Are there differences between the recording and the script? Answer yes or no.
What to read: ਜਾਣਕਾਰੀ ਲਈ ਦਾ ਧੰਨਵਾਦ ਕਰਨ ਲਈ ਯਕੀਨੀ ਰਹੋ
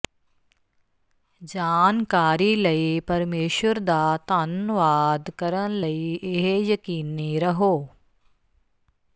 yes